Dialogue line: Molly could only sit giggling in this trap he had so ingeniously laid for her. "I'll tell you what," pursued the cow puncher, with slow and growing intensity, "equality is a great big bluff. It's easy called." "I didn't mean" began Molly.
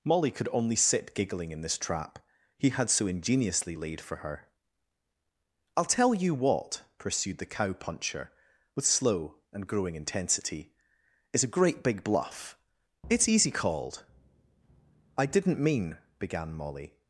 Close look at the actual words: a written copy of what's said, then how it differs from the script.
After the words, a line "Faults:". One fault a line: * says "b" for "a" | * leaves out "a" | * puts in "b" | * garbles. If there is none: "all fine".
Molly could only sit giggling in this trap he had so ingeniously laid for her. "I'll tell you what," pursued the cow puncher, with slow and growing intensity, "is a great big bluff. It's easy called." "I didn't mean" began Molly.
Faults:
* leaves out "equality"